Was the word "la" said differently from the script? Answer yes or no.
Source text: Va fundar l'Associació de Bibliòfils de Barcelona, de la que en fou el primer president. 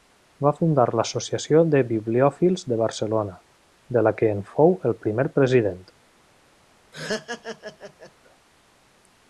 no